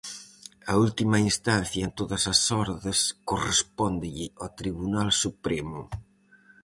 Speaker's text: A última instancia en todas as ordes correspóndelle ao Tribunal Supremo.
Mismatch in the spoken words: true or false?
false